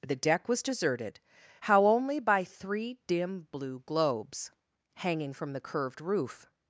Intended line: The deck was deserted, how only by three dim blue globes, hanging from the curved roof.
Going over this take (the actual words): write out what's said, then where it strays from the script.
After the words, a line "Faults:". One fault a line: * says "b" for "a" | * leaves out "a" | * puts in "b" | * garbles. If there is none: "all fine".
The deck was deserted, how only by three dim blue globes, hanging from the curved roof.
Faults:
all fine